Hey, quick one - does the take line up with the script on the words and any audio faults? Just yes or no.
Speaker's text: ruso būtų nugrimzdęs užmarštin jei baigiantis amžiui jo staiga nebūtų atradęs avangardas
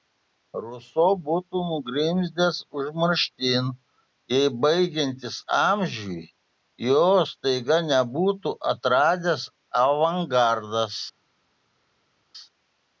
yes